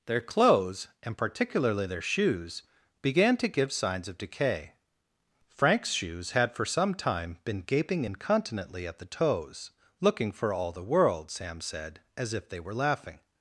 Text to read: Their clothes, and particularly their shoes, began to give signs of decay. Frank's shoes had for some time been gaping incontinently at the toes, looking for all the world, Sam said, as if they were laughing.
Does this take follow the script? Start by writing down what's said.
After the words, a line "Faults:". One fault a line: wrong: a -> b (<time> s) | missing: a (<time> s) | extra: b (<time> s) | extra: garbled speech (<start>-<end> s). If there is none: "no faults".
Their clothes, and particularly their shoes, began to give signs of decay. Frank's shoes had for some time been gaping incontinently at the toes, looking for all the world, Sam said, as if they were laughing.
Faults:
no faults